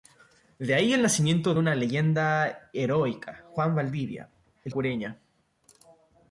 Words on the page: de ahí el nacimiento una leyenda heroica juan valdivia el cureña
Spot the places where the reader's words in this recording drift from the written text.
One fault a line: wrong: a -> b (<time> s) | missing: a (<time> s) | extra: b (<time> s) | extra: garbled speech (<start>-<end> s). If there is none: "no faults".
no faults